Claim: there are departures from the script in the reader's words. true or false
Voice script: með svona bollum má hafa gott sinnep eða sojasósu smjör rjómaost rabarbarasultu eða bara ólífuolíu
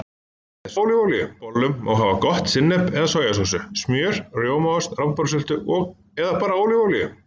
true